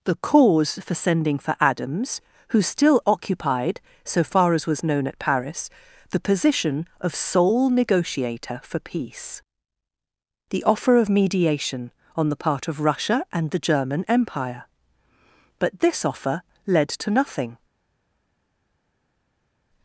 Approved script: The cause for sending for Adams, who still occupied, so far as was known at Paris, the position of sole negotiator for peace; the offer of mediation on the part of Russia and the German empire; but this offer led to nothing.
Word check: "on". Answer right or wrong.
right